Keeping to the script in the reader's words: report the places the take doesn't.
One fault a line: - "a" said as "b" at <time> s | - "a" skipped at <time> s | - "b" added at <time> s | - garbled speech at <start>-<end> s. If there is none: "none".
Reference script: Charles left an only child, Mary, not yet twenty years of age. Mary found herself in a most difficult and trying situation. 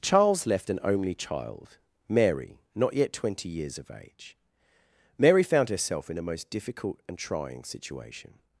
none